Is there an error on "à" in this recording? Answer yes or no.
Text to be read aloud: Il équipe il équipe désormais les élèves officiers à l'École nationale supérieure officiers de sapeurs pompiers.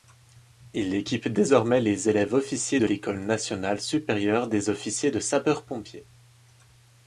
yes